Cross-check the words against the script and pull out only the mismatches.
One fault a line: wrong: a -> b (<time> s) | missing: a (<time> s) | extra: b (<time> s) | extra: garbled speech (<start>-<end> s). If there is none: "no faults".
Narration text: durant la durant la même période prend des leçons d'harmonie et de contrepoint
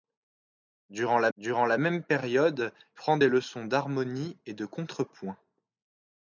no faults